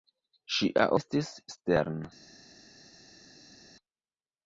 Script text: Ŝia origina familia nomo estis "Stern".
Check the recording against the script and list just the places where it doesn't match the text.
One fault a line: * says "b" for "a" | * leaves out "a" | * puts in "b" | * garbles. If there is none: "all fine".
* leaves out "origina familia nomo"